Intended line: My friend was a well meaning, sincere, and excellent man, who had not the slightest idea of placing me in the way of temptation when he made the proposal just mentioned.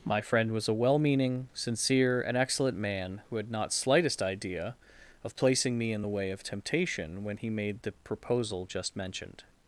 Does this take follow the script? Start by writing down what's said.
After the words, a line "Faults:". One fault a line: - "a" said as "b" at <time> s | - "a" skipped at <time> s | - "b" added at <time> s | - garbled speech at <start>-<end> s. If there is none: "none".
My friend was a well meaning, sincere, and excellent man, who had not slightest idea of placing me in the way of temptation when he made the proposal just mentioned.
Faults:
- "the" skipped at 3.7 s